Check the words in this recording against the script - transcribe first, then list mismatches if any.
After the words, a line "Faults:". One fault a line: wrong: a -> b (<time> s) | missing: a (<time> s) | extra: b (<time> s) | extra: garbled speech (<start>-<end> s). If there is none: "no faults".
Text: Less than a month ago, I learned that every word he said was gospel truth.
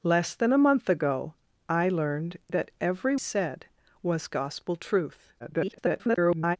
Less than a month ago, I learned that every said was gospel truth. [garbled]
Faults:
missing: word he (3.1 s)
extra: garbled speech (5.4-6.6 s)